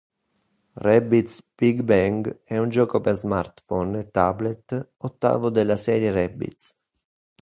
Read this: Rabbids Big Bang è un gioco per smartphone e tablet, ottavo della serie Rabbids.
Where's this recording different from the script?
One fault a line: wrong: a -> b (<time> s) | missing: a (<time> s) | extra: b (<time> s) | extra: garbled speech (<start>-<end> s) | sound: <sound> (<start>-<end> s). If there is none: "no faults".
no faults